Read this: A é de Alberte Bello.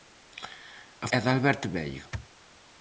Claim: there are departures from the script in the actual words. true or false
false